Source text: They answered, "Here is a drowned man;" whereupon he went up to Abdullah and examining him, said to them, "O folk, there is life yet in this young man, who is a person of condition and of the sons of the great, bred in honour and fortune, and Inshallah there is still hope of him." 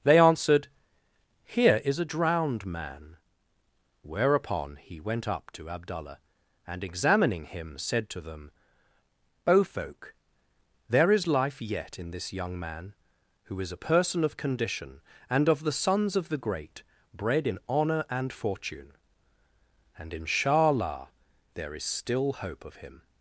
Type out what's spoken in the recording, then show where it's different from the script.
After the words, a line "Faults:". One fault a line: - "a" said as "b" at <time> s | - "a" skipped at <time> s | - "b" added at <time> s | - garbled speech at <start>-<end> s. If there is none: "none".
They answered, "Here is a drowned man;" whereupon he went up to Abdullah and examining him, said to them, "O folk, there is life yet in this young man, who is a person of condition and of the sons of the great, bred in honour and fortune, and Inshallah there is still hope of him."
Faults:
none